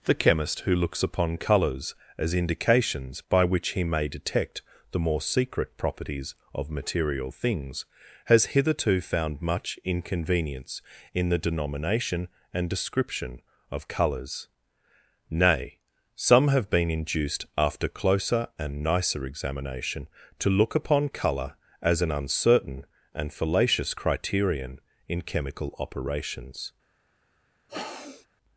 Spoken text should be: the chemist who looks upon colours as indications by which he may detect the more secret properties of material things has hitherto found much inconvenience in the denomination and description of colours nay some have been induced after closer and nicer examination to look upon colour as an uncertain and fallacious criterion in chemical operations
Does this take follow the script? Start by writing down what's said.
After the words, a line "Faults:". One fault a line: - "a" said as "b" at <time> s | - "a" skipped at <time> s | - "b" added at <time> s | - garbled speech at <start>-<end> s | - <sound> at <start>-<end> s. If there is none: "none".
the chemist who looks upon colours as indications by which he may detect the more secret properties of material things has hitherto found much inconvenience in the denomination and description of colours nay some have been induced after closer and nicer examination to look upon colour as an uncertain and fallacious criterion in chemical operations
Faults:
- sniff at 27.7-28.3 s